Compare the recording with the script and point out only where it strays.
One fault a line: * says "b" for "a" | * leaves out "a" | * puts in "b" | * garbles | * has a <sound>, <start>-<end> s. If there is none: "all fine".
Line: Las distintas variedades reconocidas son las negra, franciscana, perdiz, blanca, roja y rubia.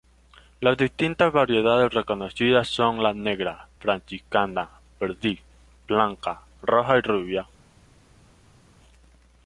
* says "la" for "las"